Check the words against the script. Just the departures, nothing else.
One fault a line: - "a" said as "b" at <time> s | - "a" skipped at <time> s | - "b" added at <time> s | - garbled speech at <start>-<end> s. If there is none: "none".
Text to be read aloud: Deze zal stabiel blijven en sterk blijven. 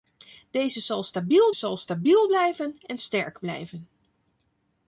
- "zal stabiel" added at 1.5 s